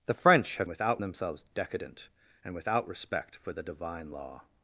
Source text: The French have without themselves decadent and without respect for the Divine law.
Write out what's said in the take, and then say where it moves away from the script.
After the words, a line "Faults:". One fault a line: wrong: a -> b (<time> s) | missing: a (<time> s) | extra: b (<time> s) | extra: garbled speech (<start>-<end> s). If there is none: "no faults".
The French have without themselves decadent and without respect for the Divine law.
Faults:
no faults